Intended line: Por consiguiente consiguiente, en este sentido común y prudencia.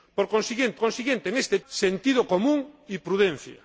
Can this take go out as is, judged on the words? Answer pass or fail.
pass